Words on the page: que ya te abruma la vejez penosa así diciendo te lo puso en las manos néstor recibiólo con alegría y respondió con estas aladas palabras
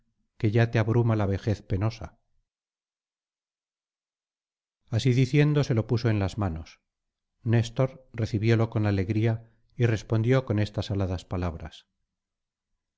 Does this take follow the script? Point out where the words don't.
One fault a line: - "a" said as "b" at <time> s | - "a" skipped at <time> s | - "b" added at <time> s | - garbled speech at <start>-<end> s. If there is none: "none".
- "te" said as "se" at 5.6 s